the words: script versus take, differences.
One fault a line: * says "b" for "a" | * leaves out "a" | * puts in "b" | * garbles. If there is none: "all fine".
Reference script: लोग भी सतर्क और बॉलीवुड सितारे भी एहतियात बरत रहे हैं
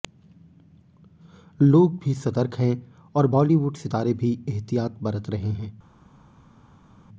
* puts in "हैं"